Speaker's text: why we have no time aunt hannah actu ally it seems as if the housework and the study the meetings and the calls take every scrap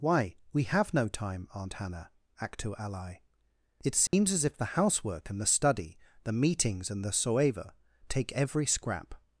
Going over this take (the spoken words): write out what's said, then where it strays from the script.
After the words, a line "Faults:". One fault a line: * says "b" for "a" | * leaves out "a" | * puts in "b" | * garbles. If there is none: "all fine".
why we have no time aunt hannah actu ally it seems as if the housework and the study the meetings and the soeva take every scrap
Faults:
* says "soeva" for "calls"